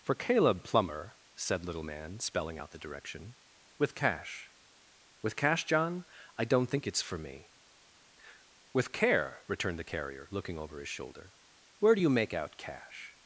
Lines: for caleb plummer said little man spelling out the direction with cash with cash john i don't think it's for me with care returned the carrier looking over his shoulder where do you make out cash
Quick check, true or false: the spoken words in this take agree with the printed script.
true